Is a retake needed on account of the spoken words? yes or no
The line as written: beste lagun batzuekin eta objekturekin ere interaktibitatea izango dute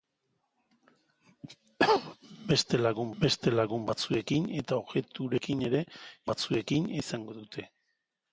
yes